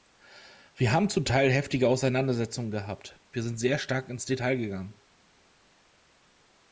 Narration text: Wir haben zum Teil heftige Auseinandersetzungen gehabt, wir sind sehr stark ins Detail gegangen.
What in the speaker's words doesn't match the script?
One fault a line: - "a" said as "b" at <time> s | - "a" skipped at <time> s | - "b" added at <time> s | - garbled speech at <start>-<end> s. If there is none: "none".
none